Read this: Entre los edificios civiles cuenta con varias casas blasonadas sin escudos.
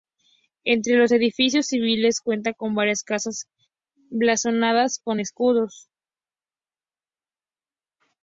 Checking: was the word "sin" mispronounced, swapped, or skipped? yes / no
yes